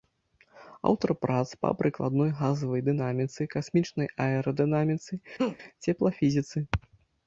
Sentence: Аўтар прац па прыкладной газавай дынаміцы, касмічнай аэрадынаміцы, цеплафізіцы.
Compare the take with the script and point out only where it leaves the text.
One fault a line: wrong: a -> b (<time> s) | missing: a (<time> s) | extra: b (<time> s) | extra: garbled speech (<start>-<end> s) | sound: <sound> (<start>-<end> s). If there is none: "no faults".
sound: laugh (5.4-5.6 s)